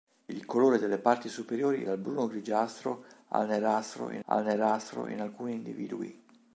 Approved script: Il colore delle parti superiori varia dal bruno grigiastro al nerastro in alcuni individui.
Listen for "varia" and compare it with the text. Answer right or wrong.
wrong